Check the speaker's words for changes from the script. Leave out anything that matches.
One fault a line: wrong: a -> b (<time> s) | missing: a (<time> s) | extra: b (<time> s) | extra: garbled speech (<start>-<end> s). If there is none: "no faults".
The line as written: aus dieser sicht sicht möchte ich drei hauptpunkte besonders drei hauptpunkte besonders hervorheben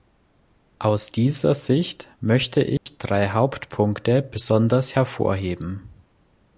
missing: sicht (2.1 s)
missing: drei hauptpunkte besonders (5.0 s)